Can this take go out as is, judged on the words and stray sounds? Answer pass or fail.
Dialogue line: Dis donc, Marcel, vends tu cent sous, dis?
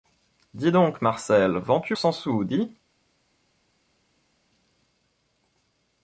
pass